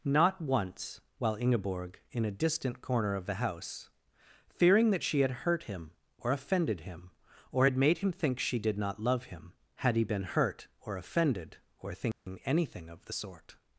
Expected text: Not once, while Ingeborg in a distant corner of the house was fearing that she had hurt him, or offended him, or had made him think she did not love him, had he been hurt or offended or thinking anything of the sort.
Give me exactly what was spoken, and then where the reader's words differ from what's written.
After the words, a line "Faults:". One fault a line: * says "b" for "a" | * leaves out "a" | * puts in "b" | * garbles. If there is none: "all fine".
Not once, while Ingeborg in a distant corner of the house fearing that she had hurt him, or offended him, or had made him think she did not love him, had he been hurt or offended or thinking anything of the sort.
Faults:
* leaves out "was"